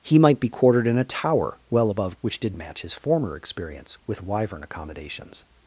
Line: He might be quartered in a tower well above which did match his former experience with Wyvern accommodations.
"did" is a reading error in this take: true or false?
false